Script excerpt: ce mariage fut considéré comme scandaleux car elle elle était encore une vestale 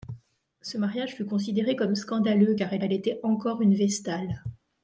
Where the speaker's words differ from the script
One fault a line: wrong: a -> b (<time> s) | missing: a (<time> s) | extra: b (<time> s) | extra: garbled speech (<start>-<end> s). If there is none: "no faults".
no faults